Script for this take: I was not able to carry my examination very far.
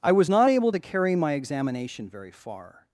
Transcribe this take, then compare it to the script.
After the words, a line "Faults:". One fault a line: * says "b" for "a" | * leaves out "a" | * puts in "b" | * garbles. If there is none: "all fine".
I was not able to carry my examination very far.
Faults:
all fine